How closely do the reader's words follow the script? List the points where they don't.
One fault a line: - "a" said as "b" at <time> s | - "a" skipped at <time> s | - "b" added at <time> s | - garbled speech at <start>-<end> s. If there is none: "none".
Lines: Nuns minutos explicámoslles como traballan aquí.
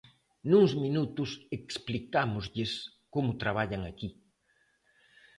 none